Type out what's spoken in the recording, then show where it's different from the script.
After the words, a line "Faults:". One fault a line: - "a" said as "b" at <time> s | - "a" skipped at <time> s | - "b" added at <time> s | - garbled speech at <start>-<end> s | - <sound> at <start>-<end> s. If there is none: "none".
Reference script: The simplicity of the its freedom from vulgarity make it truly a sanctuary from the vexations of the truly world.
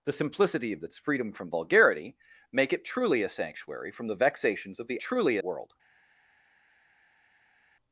The simplicity of the its freedom from vulgarity make it truly a sanctuary from the vexations of the truly world.
Faults:
none